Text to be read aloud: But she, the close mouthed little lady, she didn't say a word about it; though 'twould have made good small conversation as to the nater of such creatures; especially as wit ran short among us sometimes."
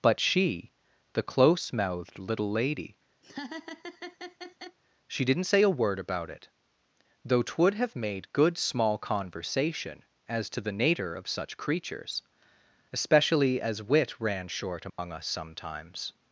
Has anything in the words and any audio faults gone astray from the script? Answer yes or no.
yes